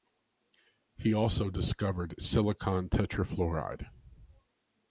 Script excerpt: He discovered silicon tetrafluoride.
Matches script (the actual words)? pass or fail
fail